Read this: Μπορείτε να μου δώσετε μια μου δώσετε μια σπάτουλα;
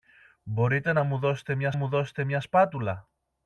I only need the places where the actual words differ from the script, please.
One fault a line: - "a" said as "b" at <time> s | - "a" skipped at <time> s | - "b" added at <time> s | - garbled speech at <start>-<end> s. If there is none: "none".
none